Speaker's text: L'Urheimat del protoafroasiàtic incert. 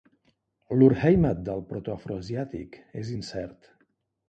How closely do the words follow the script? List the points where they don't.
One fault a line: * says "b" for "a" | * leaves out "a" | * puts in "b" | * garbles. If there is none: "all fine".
* puts in "és"